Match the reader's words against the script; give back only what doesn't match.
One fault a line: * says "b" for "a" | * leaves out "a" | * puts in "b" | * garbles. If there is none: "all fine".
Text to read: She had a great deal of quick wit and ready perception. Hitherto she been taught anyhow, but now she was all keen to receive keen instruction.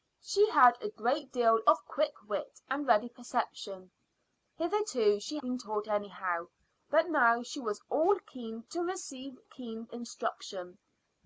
all fine